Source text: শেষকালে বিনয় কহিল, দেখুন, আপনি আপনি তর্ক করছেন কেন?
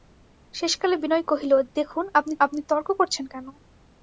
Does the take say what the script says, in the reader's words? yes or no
yes